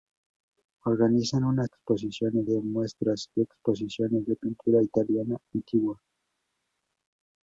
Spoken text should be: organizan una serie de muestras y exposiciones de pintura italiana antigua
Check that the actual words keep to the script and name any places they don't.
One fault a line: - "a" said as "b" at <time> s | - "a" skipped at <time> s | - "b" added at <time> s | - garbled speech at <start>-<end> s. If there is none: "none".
- "serie" said as "exposiciones" at 1.6 s